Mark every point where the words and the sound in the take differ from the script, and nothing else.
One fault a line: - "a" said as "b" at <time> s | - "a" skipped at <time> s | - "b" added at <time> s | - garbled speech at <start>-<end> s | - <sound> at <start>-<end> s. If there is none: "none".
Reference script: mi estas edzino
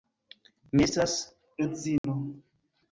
- dropout at 2.0-2.0 s